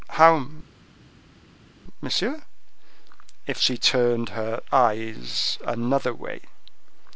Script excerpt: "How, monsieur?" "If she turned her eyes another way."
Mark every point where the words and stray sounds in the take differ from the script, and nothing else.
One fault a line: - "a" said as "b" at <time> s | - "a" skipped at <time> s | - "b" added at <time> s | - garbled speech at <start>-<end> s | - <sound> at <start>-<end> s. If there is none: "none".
none